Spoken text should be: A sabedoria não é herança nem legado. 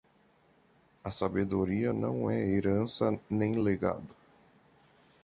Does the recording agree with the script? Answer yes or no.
yes